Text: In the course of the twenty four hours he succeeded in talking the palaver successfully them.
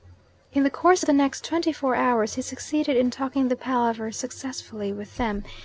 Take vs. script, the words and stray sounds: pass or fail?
fail